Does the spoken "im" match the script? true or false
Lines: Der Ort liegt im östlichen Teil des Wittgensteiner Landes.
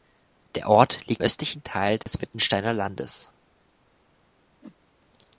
false